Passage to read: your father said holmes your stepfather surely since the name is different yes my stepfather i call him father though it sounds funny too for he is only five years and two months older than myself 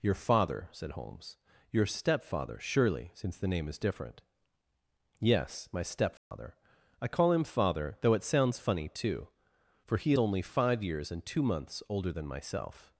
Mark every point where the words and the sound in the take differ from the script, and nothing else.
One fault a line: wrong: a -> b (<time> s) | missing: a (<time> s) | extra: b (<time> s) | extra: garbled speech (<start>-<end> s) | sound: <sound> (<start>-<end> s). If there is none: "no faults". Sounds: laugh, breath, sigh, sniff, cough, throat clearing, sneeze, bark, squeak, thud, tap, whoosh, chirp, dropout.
sound: dropout (6.2-6.3 s)
missing: is (10.1 s)